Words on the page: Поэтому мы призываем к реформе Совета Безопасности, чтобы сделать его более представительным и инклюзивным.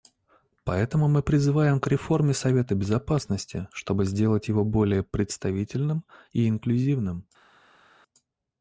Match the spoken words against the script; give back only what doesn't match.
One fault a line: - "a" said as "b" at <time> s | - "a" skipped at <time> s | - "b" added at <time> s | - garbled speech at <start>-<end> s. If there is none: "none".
none